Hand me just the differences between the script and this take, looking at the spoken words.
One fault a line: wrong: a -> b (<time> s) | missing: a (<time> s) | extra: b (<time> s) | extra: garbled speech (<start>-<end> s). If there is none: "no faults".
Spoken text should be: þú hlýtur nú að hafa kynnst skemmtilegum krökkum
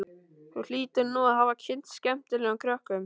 no faults